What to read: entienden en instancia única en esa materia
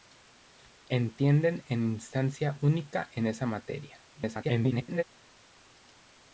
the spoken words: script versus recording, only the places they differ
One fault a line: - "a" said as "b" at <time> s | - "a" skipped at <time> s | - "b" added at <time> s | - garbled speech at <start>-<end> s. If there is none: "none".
- garbled speech at 4.1-5.0 s